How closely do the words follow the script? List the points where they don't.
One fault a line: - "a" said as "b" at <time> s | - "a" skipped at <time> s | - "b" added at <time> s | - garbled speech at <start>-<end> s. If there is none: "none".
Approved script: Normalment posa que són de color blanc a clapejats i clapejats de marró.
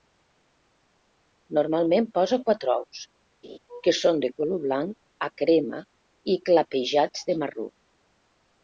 - "quatre ous" added at 2.5 s
- "clapejats" said as "crema" at 5.4 s